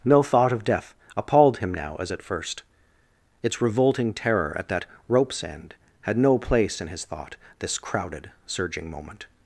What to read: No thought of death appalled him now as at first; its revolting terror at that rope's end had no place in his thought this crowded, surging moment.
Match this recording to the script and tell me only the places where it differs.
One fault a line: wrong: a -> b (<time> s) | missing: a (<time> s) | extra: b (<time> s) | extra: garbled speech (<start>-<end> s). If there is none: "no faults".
no faults